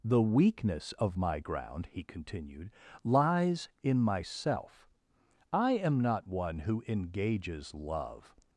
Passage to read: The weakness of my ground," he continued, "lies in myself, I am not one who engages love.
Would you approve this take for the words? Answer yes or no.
yes